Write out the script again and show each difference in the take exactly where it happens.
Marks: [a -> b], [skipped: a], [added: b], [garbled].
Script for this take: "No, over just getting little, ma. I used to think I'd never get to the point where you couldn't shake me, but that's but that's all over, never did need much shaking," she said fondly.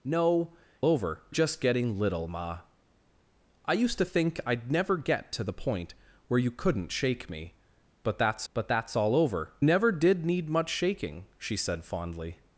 "No, over just getting little, ma. I used to think I'd never get to the point where you couldn't shake me, but that's but that's all over, never did need much shaking," she said fondly.